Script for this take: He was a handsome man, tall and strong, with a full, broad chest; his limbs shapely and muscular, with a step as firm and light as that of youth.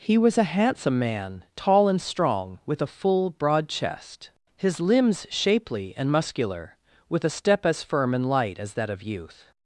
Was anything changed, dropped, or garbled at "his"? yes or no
no